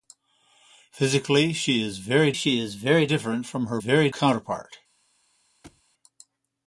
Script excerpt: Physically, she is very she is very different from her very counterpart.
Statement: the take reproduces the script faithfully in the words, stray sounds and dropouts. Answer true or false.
false